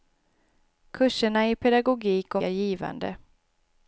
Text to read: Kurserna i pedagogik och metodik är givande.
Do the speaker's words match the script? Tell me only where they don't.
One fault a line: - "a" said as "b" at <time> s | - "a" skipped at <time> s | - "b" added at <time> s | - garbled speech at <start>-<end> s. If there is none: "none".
- "metodik" skipped at 2.4 s